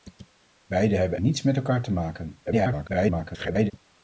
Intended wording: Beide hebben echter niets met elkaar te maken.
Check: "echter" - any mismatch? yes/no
yes